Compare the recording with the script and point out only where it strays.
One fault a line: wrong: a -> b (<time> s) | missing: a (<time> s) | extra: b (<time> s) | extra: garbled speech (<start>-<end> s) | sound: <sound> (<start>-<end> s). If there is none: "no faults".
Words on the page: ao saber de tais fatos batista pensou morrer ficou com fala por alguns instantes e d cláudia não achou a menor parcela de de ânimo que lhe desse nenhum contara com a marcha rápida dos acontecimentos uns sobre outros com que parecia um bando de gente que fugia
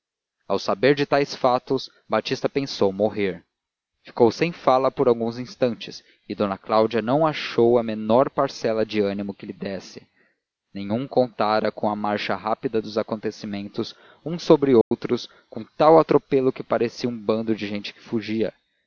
wrong: com -> sem (4.3 s)
missing: de (9.0 s)
sound: dropout (14.8-14.9 s)
extra: tal atropelo (15.8 s)